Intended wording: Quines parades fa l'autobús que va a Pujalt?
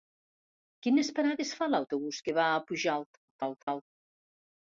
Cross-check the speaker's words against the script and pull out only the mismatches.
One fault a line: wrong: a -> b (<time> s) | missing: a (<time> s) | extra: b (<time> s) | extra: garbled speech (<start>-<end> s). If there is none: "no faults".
extra: garbled speech (3.3-3.8 s)